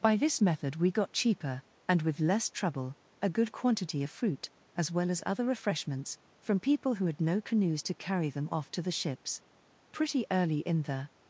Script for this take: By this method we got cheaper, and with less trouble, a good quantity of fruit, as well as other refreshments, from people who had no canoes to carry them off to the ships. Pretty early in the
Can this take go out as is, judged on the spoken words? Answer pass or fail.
pass